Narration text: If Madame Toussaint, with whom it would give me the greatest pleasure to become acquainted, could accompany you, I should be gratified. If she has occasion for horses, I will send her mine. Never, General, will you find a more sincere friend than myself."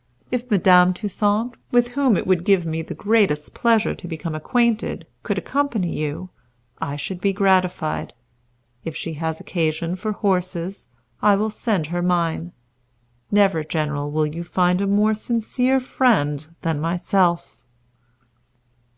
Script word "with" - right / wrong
right